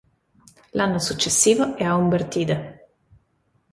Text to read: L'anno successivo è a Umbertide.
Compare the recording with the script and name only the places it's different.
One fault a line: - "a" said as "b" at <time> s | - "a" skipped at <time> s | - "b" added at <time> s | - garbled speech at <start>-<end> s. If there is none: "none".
none